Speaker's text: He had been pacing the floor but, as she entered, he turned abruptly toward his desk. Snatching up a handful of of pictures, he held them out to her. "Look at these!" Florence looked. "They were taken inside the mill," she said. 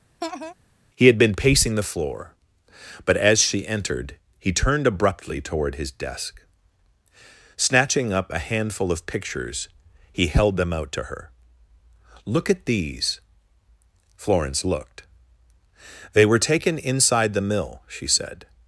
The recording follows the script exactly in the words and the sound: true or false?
false